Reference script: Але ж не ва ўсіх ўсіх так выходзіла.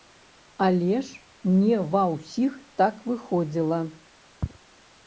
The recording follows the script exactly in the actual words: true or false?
false